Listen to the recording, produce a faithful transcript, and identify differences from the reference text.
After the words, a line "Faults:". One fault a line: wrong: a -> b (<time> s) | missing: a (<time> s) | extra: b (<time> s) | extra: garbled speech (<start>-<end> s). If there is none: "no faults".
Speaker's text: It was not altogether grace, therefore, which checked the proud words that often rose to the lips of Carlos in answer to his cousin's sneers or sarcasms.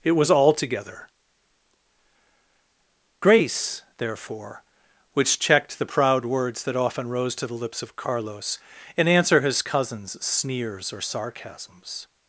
It was altogether grace, therefore, which checked the proud words that often rose to the lips of Carlos in answer his cousin's sneers or sarcasms.
Faults:
missing: not (0.3 s)
missing: to (9.4 s)